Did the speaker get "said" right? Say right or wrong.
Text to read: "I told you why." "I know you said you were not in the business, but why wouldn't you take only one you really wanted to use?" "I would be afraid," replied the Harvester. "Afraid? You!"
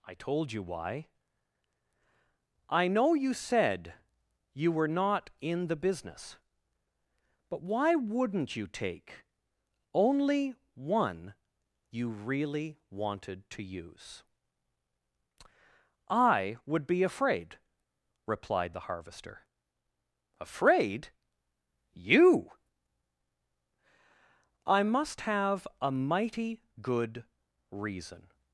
right